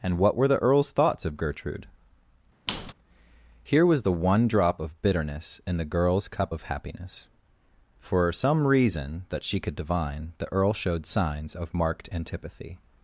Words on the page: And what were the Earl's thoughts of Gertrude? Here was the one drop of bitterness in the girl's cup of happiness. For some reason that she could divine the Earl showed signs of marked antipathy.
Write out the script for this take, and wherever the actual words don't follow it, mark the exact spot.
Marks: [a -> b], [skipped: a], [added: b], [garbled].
And what were the Earl's thoughts of Gertrude? Here was the one drop of bitterness in the girl's cup of happiness. For some reason that she could divine the Earl showed signs of marked antipathy.